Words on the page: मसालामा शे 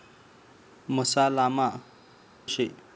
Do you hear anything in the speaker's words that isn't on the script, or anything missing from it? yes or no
no